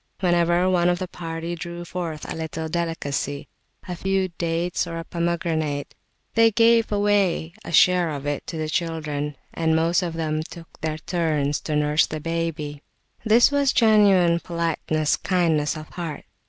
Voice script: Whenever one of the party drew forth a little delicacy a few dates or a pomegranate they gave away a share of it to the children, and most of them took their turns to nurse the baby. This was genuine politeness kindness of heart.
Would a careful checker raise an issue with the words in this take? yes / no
no